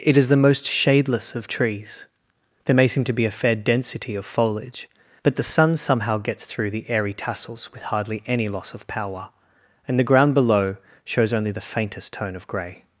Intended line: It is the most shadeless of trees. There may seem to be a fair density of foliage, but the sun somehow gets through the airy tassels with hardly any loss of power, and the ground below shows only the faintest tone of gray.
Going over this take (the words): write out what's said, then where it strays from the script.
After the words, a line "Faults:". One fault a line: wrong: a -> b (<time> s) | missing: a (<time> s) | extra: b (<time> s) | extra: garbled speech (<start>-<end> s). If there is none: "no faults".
It is the most shadeless of trees. There may seem to be a fair density of foliage, but the sun somehow gets through the airy tassels with hardly any loss of power, and the ground below shows only the faintest tone of gray.
Faults:
no faults